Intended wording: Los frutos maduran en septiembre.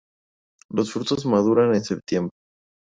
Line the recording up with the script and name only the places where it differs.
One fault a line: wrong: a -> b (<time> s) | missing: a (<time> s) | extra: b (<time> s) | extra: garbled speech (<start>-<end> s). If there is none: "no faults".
no faults